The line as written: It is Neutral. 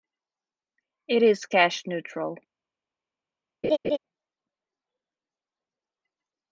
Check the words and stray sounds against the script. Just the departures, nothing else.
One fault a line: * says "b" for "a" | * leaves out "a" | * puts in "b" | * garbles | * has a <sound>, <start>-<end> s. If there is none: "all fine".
* puts in "Cash"
* has a laugh, 3.6-4.0 s